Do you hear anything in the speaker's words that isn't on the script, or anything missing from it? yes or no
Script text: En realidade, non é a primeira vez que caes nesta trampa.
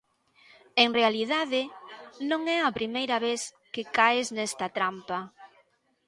no